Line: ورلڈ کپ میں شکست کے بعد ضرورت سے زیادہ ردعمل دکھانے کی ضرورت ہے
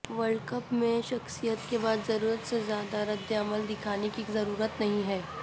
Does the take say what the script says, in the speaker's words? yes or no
no